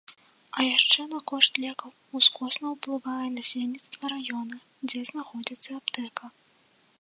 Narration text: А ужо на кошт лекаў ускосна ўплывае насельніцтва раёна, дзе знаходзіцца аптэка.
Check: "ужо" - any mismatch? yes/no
yes